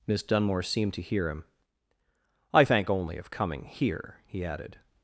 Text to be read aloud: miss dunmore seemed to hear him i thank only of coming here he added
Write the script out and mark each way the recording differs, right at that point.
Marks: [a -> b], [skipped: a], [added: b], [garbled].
miss dunmore seemed to hear him i thank only of coming here he added